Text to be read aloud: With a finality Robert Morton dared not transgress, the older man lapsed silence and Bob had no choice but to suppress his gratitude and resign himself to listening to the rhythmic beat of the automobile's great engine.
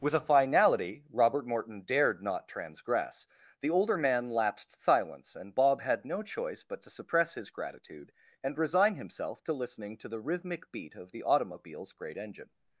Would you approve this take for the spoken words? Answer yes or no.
yes